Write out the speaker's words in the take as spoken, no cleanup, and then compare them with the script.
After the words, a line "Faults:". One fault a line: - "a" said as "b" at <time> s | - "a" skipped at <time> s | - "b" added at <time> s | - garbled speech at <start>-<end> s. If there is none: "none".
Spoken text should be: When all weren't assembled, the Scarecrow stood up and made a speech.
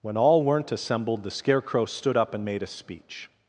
When all weren't assembled, the Scarecrow stood up and made a speech.
Faults:
none